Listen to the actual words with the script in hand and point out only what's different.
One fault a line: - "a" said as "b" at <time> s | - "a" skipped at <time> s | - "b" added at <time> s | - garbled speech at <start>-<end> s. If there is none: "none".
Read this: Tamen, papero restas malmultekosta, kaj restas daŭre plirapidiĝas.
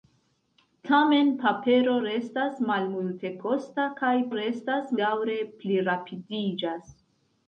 none